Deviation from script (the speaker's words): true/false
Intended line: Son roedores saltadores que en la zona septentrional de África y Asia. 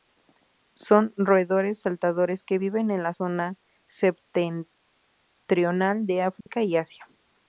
true